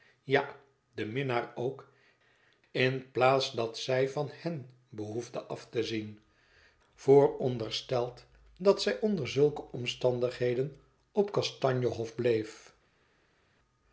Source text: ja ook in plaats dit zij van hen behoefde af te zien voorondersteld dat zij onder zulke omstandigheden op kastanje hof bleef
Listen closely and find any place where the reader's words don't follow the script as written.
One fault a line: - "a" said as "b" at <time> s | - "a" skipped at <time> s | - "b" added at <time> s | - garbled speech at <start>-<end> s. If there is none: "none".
- "de minnaar" added at 0.9 s
- "dit" said as "dat" at 3.5 s